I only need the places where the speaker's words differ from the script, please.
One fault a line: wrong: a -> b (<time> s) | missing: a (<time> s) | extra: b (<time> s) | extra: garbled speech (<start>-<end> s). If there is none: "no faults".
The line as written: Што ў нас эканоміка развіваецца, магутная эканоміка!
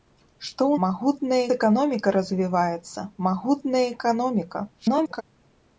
wrong: нас -> магутная (0.9 s)
extra: garbled speech (4.8-5.2 s)